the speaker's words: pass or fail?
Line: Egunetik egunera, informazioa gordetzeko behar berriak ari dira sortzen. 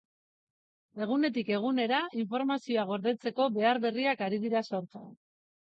pass